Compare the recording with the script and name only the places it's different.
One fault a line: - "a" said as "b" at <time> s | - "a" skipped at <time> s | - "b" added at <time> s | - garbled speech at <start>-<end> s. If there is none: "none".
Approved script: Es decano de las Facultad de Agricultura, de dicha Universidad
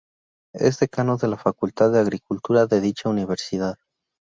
- "las" said as "la" at 1.3 s